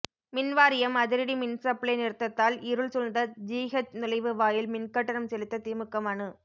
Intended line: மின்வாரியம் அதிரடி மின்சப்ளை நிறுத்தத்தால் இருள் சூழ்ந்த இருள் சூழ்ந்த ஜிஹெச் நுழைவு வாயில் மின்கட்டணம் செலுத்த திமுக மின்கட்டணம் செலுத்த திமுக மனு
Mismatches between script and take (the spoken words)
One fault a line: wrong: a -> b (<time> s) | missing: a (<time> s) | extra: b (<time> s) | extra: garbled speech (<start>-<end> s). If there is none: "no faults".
missing: இருள் சூழ்ந்த (3.2 s)
missing: மின்கட்டணம் செலுத்த திமுக (6.0 s)